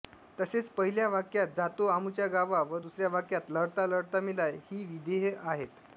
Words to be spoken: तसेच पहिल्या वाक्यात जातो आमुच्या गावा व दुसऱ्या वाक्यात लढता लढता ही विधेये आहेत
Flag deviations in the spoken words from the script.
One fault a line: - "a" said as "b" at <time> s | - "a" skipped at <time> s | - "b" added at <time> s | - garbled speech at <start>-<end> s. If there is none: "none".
- "मेला" added at 4.2 s